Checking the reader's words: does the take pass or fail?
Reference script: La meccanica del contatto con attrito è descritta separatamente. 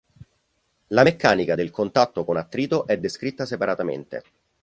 pass